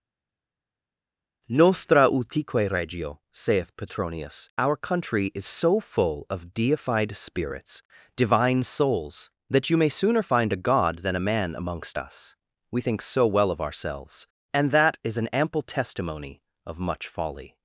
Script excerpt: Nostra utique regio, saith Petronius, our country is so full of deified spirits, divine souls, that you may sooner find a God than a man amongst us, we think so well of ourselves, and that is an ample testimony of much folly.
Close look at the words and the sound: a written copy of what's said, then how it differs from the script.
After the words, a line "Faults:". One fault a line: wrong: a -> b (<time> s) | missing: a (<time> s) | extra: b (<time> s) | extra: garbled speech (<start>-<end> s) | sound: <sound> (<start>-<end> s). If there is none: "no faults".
Nostra utique regio, saith Petronius, our country is so full of deified spirits, divine souls, that you may sooner find a God than a man amongst us, we think so well of ourselves, and that is an ample testimony of much folly.
Faults:
no faults